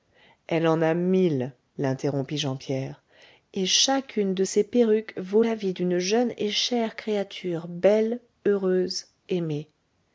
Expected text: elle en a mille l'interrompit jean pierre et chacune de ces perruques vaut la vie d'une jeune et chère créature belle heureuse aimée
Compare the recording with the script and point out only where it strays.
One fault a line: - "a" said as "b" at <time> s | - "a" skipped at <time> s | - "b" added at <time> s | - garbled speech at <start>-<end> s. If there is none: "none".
none